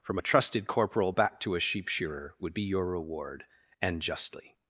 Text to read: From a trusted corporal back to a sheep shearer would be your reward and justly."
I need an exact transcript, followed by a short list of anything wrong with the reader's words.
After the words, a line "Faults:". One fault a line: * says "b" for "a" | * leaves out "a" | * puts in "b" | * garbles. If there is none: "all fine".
From a trusted corporal back to a sheep shearer would be your reward and justly."
Faults:
all fine